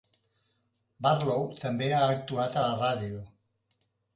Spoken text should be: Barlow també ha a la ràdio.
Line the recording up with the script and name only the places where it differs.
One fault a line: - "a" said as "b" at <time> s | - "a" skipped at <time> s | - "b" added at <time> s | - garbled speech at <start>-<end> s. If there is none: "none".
- "actuat" added at 2.2 s